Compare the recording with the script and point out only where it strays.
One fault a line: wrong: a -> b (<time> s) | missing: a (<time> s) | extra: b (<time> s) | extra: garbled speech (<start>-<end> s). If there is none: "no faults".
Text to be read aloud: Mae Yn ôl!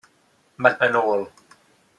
no faults